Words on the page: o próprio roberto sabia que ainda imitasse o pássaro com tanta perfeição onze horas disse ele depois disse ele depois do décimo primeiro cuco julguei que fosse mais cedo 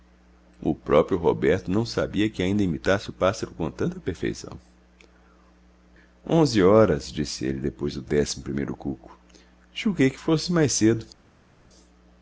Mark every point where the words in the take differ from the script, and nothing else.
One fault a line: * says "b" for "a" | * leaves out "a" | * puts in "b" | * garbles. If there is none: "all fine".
* puts in "não"
* leaves out "disse ele depois"